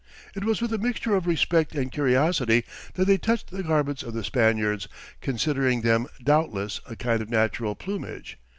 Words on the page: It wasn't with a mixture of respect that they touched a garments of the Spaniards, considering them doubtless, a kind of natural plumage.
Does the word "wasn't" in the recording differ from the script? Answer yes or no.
yes